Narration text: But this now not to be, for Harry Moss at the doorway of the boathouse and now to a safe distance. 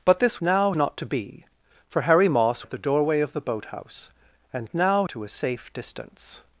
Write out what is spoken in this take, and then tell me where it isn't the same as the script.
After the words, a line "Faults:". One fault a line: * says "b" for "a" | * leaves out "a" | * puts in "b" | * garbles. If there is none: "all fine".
But this now not to be, for Harry Moss at the doorway of the boathouse and now to a safe distance.
Faults:
all fine